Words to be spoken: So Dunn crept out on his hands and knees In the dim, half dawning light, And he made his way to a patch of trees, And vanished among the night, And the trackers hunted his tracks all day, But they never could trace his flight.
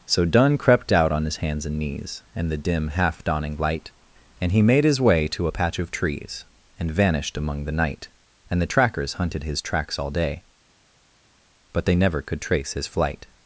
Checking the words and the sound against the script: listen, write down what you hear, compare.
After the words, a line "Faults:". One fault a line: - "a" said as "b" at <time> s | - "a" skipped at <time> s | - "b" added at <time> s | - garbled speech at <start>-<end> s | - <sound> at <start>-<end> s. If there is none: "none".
So Dunn crept out on his hands and knees In the dim, half dawning light, And he made his way to a patch of trees, And vanished among the night, And the trackers hunted his tracks all day, But they never could trace his flight.
Faults:
none